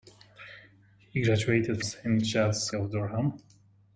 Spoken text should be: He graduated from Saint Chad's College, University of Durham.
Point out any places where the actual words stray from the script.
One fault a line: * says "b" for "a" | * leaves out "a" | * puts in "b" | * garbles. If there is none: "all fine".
* leaves out "from"
* leaves out "College University"